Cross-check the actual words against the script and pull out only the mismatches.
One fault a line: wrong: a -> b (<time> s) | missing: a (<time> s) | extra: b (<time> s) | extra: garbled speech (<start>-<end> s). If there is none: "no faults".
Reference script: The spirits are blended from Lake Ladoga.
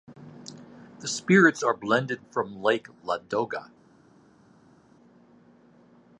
no faults